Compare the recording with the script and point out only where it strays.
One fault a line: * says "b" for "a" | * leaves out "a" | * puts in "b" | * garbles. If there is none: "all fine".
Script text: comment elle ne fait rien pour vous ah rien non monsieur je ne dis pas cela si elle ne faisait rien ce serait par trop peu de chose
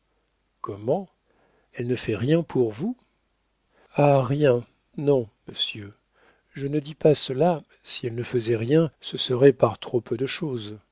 all fine